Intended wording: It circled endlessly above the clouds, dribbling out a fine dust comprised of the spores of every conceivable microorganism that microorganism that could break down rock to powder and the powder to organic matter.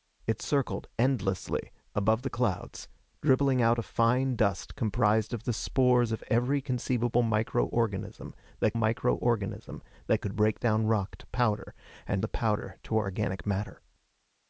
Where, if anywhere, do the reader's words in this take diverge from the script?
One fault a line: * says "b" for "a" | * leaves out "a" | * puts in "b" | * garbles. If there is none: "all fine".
all fine